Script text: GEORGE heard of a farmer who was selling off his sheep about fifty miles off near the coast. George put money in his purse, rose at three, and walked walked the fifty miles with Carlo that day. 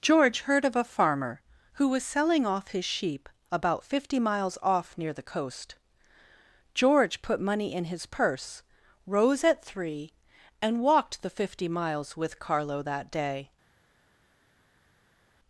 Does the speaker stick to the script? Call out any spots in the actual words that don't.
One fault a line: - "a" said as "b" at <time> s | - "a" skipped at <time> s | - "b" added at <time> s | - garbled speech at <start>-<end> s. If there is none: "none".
- "walked" skipped at 11.2 s